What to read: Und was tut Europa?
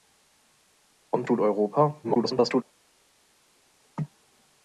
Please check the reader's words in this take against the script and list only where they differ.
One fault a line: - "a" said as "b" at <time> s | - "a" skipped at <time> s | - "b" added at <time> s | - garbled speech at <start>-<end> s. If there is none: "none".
- "was" skipped at 1.3 s
- garbled speech at 2.0-2.6 s